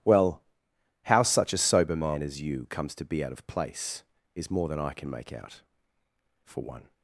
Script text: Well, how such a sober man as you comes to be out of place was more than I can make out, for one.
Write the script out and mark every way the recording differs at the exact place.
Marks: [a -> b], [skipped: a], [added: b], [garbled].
Well, how such a sober man as you comes to be out of place [was -> is] more than I can make out, for one.